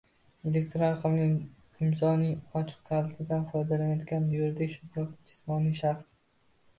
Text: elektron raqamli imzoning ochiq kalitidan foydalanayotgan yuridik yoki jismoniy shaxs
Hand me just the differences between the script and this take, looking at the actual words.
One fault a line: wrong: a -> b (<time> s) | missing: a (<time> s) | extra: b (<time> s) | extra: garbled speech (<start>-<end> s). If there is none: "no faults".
no faults